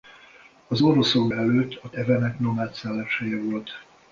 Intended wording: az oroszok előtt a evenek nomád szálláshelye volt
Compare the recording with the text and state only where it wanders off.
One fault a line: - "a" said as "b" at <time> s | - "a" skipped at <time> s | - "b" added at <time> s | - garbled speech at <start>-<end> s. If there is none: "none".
none